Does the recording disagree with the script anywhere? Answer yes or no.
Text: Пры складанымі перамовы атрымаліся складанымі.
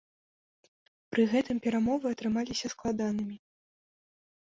yes